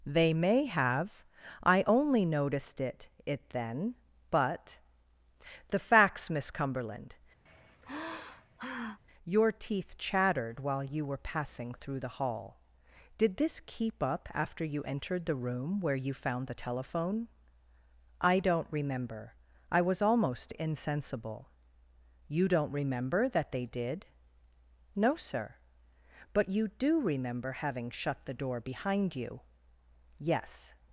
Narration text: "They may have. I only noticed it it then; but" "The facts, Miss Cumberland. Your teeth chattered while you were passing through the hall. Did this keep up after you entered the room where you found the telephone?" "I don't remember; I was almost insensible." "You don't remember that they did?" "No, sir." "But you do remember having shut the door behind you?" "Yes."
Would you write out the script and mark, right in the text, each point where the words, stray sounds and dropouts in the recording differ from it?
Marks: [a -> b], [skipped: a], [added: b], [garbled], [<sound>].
"They may have. I only noticed it it then; but" "The facts, Miss Cumberland. [sigh] Your teeth chattered while you were passing through the hall. Did this keep up after you entered the room where you found the telephone?" "I don't remember; I was almost insensible." "You don't remember that they did?" "No, sir." "But you do remember having shut the door behind you?" "Yes."